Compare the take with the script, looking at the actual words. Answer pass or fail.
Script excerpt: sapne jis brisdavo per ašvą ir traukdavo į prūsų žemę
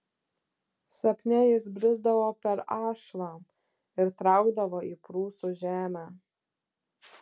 pass